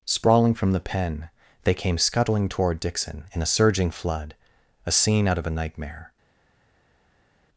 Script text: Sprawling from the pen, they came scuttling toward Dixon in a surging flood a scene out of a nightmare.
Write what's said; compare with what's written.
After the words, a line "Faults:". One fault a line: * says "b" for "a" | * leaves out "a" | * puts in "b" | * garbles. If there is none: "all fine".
Sprawling from the pen, they came scuttling toward Dixon in a surging flood a scene out of a nightmare.
Faults:
all fine